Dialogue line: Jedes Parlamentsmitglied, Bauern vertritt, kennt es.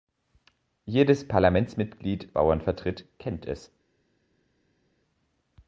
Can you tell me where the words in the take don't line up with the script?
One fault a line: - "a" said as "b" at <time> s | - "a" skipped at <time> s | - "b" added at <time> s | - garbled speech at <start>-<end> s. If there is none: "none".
none